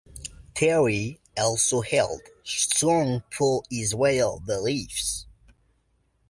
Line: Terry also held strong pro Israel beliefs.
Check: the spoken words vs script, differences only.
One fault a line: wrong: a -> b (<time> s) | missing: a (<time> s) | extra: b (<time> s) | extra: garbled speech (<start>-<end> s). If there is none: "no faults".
no faults